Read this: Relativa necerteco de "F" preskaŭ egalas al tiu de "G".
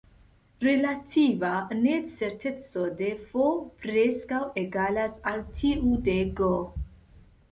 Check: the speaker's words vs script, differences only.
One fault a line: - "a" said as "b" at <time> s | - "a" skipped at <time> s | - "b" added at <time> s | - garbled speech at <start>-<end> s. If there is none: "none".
none